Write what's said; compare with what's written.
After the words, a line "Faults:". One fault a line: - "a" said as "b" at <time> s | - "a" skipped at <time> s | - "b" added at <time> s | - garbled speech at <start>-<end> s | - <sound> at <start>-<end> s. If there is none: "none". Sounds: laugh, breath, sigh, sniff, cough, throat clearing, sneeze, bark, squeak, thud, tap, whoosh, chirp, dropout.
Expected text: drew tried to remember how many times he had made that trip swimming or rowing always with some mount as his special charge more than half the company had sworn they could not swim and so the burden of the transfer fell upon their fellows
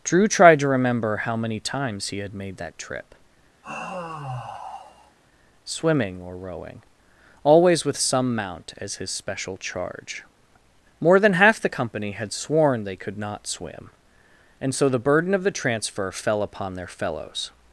drew tried to remember how many times he had made that trip swimming or rowing always with some mount as his special charge more than half the company had sworn they could not swim and so the burden of the transfer fell upon their fellows
Faults:
- sigh at 3.6-5.2 s